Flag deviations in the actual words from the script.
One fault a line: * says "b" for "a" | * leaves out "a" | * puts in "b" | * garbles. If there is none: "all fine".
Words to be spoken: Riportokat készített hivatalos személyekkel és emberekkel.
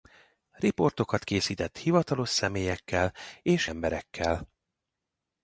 all fine